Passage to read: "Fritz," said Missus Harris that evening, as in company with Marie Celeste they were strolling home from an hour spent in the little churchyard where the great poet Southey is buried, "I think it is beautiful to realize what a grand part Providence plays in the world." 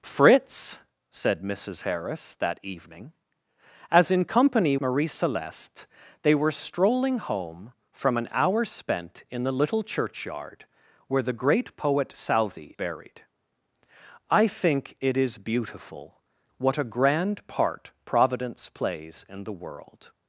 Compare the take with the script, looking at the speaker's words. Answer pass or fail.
fail